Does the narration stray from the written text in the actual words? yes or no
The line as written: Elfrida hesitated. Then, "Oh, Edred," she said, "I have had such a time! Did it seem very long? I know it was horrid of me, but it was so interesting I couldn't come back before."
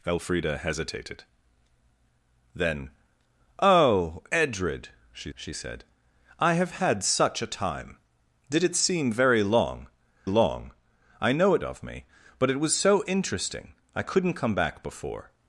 yes